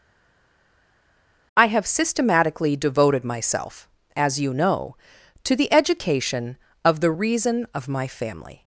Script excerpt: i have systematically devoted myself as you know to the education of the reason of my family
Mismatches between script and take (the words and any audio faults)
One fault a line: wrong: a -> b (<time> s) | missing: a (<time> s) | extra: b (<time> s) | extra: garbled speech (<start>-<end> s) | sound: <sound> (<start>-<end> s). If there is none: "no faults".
no faults